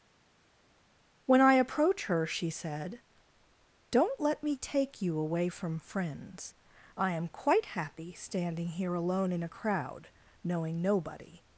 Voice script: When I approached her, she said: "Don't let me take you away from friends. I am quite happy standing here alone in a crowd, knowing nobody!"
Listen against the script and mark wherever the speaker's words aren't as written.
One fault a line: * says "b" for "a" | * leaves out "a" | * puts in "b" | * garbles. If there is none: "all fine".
* says "approach" for "approached"